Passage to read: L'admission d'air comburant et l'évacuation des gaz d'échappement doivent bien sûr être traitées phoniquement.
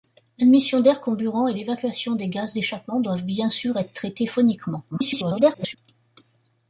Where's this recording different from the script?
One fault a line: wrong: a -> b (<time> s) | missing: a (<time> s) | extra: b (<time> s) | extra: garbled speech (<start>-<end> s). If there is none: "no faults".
extra: garbled speech (4.9-5.8 s)